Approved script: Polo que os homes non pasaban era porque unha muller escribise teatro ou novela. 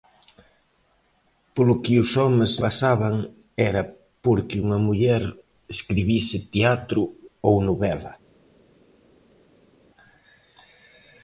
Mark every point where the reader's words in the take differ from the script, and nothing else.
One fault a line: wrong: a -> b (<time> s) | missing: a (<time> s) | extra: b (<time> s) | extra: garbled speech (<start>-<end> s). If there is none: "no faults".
missing: non (2.5 s)